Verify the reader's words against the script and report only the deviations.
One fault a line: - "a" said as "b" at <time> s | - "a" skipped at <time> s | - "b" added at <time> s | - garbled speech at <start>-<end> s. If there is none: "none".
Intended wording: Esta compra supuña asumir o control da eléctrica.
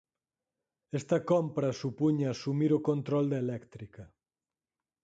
none